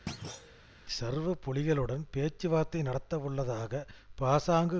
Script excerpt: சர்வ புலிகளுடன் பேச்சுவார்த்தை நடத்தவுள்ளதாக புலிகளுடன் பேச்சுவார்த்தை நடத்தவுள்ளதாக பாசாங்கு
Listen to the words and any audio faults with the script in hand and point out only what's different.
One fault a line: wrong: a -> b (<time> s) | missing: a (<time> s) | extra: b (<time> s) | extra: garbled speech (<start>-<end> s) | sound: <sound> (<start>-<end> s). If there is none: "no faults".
sound: thud (0.1-0.6 s)
missing: புலிகளுடன் பேச்சுவார்த்தை நடத்தவுள்ளதாக (3.8 s)